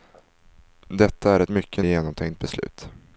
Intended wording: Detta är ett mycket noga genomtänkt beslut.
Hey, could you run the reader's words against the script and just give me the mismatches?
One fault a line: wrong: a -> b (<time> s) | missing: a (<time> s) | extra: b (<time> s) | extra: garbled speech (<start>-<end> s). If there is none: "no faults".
missing: noga (1.8 s)